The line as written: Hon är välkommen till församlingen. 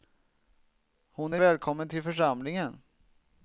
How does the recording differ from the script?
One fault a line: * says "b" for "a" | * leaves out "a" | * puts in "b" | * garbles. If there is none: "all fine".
all fine